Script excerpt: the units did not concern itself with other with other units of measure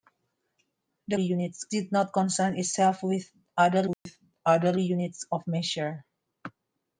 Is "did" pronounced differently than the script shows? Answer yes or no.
no